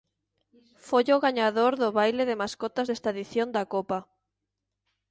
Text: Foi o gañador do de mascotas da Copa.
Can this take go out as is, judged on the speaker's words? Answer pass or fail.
fail